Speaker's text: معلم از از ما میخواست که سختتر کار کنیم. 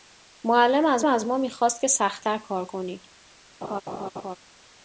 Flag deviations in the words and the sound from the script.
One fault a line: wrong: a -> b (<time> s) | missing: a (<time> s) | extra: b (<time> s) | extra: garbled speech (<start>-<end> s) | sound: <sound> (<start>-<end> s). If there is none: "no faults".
sound: laugh (3.6-4.4 s)